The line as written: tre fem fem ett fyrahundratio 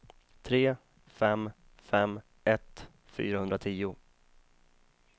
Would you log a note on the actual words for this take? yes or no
no